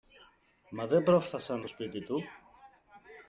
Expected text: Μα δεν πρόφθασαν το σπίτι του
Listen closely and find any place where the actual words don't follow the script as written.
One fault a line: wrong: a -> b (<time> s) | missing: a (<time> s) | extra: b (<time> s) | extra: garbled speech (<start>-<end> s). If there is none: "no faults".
no faults